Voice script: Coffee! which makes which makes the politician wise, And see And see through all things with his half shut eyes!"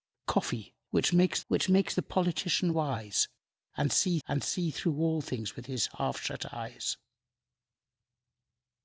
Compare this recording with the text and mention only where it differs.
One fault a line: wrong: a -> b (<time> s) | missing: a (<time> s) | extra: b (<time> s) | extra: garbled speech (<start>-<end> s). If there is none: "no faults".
no faults